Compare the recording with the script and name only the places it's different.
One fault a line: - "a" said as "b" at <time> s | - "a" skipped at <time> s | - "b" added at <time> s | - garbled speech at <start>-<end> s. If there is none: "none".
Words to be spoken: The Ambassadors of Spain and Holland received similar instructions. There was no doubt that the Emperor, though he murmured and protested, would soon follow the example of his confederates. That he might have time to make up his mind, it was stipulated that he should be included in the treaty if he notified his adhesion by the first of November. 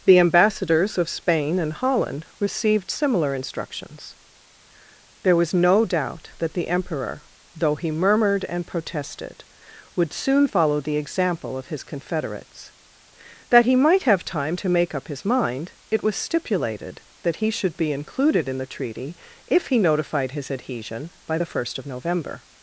none